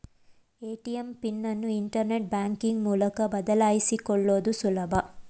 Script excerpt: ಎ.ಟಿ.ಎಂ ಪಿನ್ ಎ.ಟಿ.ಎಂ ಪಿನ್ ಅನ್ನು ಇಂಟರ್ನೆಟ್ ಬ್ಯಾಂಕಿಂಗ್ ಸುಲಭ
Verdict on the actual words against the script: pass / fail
fail